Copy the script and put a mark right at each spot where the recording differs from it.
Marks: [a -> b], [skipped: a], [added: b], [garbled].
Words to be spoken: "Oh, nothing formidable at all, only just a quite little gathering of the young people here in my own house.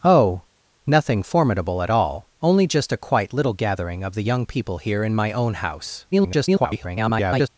"Oh, nothing formidable at all, only just a quite little gathering of the young people here in my own house. [garbled]